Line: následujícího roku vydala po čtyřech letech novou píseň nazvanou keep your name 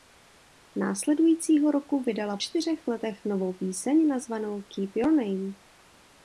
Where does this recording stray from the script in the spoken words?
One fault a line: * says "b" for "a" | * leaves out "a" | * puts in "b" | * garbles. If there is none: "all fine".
* leaves out "po"